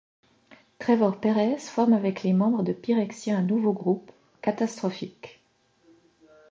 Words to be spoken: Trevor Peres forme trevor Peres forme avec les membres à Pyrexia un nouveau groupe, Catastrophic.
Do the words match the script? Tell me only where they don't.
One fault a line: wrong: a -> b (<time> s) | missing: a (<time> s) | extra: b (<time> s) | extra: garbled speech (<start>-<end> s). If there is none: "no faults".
missing: trevor Peres forme (1.9 s)
wrong: à -> de (2.6 s)